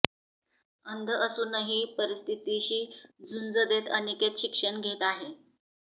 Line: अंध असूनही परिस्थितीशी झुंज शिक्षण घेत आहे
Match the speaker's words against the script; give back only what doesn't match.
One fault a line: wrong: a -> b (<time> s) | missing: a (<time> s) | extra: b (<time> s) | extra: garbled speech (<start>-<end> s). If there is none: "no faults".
extra: देत अनिकेत (3.7 s)